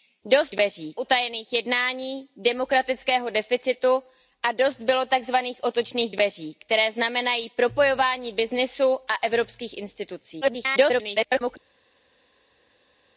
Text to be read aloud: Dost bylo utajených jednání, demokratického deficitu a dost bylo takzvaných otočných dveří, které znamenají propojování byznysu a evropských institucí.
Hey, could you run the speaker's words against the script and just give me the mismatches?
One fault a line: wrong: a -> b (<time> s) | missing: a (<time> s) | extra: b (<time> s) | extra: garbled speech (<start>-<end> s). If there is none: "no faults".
wrong: bylo -> dveří (0.5 s)
extra: garbled speech (10.4-11.6 s)